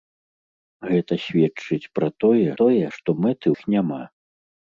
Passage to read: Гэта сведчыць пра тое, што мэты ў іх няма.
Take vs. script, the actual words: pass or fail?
fail